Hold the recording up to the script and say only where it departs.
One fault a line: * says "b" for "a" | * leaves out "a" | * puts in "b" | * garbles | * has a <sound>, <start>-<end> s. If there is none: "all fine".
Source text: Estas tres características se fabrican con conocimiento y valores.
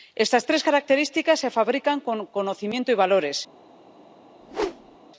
* has a whoosh, 4.4-5.0 s